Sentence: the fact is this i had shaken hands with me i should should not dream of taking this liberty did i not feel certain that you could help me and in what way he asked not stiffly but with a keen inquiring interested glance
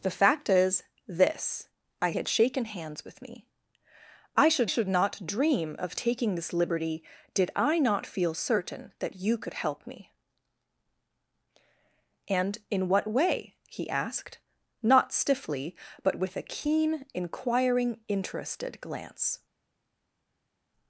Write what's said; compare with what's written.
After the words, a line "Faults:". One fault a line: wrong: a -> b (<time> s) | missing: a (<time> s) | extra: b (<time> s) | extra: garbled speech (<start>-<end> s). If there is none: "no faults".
the fact is this i had shaken hands with me i should should not dream of taking this liberty did i not feel certain that you could help me and in what way he asked not stiffly but with a keen inquiring interested glance
Faults:
no faults